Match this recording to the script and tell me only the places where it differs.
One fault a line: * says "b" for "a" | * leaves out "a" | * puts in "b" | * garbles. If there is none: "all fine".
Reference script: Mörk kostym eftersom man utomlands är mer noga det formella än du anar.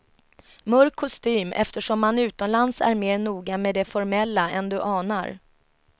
* puts in "med"